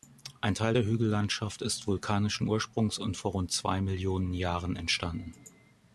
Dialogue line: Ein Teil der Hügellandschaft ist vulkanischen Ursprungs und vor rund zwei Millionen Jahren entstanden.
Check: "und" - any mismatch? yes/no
no